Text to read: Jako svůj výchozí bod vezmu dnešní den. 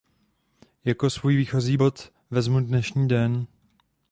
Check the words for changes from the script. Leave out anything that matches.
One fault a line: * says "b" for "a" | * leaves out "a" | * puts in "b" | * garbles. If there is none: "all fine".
all fine